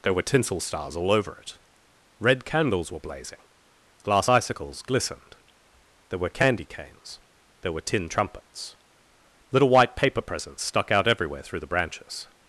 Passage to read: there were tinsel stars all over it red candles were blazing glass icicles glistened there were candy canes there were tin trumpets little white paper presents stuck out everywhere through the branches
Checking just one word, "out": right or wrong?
right